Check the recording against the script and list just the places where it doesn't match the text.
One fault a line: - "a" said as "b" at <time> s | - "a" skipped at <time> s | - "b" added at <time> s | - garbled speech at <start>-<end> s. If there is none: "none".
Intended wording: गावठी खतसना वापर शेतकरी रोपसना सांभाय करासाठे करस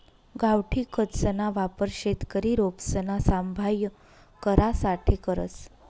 none